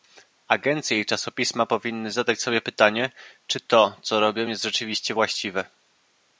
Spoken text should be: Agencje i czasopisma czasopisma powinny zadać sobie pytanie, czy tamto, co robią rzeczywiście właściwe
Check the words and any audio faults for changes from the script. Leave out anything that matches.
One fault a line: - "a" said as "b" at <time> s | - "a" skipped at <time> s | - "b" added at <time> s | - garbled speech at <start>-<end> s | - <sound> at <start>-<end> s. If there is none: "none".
- "czasopisma" skipped at 1.6 s
- "tamto" said as "to" at 3.6 s
- "jest" added at 4.5 s